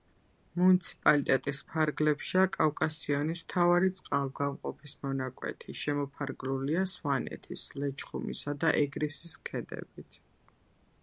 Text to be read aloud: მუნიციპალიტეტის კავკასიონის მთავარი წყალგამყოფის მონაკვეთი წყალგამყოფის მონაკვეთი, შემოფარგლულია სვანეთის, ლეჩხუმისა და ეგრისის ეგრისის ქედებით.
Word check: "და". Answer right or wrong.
right